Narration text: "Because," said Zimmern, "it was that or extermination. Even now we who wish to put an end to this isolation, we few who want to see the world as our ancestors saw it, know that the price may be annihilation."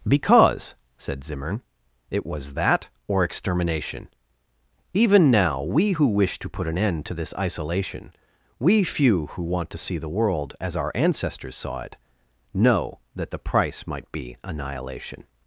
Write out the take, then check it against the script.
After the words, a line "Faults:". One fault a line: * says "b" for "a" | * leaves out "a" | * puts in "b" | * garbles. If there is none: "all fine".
"Because," said Zimmern, "it was that or extermination. Even now we who wish to put an end to this isolation, we few who want to see the world as our ancestors saw it, know that the price might be annihilation."
Faults:
* says "might" for "may"